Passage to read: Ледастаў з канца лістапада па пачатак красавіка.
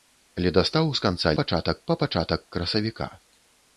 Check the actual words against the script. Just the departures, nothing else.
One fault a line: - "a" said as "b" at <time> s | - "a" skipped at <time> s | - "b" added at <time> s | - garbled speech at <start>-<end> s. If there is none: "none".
- "лістапада" said as "пачатак" at 1.4 s